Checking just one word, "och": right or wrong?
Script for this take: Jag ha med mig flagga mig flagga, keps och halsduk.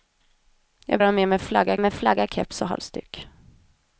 right